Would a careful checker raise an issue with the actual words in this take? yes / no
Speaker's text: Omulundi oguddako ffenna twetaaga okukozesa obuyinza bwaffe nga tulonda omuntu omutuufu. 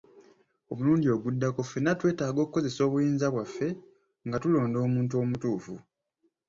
no